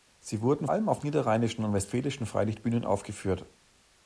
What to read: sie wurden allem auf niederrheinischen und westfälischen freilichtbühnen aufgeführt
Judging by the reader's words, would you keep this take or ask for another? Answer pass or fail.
pass